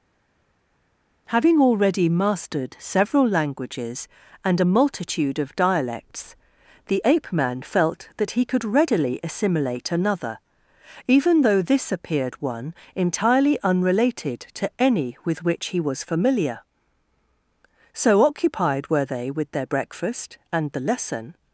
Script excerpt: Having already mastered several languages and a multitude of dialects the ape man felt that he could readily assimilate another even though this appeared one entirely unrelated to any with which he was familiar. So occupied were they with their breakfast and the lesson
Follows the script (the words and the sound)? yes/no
yes